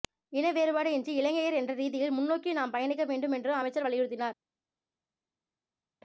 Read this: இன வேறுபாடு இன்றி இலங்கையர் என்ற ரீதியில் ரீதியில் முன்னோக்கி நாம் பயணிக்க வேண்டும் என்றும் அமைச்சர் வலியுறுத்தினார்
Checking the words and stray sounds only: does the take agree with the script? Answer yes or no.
no